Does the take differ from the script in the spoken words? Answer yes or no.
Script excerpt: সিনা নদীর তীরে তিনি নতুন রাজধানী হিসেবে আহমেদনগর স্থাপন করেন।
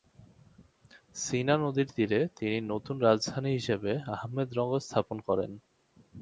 no